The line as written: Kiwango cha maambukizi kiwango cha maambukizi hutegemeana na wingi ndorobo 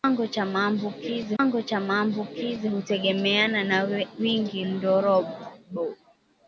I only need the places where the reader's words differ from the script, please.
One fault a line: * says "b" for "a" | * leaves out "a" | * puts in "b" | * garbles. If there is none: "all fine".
all fine